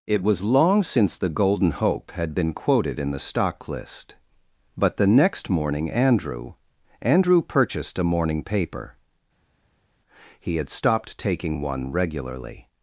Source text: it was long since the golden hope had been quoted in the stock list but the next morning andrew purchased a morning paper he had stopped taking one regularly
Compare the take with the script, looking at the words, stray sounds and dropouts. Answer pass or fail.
fail